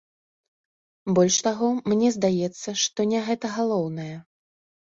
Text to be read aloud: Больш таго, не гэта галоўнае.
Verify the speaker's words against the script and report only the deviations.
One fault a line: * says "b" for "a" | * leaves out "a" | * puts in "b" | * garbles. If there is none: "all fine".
* puts in "мне здаецца што"